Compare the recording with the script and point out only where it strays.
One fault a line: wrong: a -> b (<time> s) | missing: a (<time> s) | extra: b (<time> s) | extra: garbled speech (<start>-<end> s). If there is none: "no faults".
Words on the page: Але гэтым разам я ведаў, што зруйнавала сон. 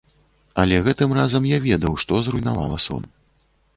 no faults